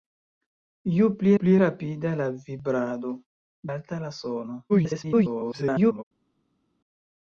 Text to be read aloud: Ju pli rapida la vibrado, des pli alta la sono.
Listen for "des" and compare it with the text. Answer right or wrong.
wrong